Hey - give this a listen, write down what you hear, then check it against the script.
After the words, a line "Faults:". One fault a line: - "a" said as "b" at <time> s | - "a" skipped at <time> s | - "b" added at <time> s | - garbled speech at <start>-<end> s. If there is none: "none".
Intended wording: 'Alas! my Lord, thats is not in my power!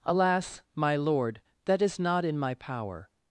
'Alas! my Lord, that is not in my power!
Faults:
- "thats" said as "that" at 1.6 s